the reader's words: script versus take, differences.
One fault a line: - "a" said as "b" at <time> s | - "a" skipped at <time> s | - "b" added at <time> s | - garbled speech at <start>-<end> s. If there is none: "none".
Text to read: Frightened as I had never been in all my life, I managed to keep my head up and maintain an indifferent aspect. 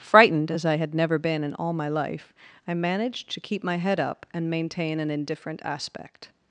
none